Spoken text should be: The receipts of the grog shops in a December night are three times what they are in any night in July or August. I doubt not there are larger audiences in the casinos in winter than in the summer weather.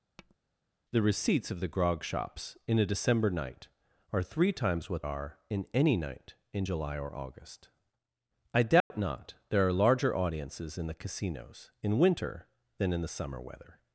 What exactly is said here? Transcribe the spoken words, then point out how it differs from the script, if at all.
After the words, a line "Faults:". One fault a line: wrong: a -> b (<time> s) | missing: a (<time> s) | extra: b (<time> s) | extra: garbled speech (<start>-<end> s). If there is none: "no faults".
The receipts of the grog shops in a December night are three times what are in any night in July or August. I doubt not there are larger audiences in the casinos in winter than in the summer weather.
Faults:
missing: they (5.0 s)